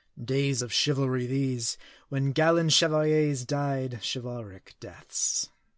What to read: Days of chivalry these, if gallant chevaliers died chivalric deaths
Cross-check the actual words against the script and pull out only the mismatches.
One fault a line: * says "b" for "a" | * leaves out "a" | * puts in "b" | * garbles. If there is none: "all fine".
* says "when" for "if"